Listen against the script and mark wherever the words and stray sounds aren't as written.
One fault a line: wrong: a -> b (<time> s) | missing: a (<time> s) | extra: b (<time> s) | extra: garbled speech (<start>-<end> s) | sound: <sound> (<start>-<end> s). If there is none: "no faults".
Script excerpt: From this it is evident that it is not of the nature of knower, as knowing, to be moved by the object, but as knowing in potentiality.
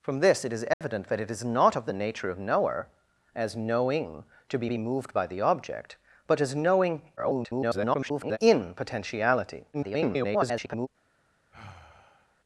sound: dropout (0.7-0.8 s)
extra: be (4.7 s)
extra: garbled speech (7.2-8.4 s)
extra: garbled speech (9.7-10.9 s)
sound: sigh (11.5-12.4 s)